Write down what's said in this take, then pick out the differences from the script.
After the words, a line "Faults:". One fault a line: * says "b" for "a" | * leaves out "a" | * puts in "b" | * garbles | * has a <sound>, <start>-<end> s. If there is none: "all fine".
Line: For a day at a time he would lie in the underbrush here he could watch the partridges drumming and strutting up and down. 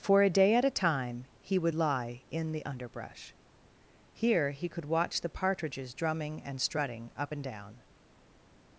For a day at a time he would lie in the underbrush here he could watch the partridges drumming and strutting up and down.
Faults:
all fine